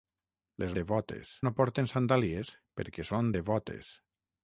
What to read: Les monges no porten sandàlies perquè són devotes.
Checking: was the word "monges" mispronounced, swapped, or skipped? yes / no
yes